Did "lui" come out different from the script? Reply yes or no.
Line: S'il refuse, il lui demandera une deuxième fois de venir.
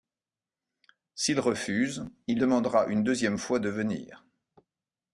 yes